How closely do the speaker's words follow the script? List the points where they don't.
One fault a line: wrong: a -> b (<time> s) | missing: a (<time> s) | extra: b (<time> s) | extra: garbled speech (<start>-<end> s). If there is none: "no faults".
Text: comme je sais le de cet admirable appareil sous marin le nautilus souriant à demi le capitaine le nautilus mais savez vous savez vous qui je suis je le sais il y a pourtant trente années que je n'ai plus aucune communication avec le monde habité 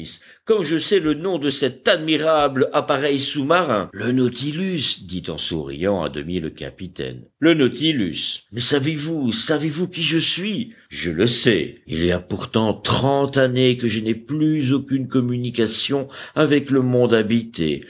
extra: nom (1.1 s)
extra: dit en (5.0 s)